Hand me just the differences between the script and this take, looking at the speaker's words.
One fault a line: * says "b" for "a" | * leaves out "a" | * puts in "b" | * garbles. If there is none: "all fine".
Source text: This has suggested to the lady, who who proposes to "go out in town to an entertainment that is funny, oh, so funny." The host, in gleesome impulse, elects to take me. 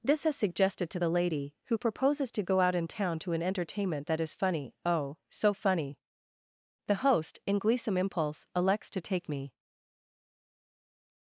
* leaves out "who"